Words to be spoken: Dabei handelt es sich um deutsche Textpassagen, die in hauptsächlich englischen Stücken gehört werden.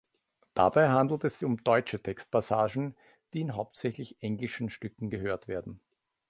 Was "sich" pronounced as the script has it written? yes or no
no